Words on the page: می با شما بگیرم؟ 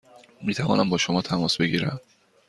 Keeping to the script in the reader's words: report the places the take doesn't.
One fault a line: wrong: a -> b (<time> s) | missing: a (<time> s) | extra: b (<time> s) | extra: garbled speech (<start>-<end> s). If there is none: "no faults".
extra: توانم (0.5 s)
extra: تماس (1.2 s)